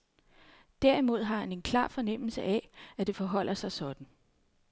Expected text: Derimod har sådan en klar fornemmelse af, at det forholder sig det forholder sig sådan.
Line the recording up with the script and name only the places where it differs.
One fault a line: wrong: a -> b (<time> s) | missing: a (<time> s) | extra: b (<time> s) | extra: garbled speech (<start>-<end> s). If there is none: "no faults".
wrong: sådan -> han (1.4 s)
missing: det forholder sig (3.7 s)